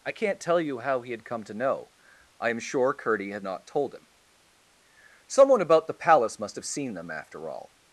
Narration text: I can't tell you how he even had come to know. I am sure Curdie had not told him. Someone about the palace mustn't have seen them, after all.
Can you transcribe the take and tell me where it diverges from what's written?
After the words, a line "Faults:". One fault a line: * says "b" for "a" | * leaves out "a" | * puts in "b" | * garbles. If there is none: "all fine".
I can't tell you how he had come to know. I am sure Curdie had not told him. Someone about the palace must have seen them, after all.
Faults:
* leaves out "even"
* says "must" for "mustn't"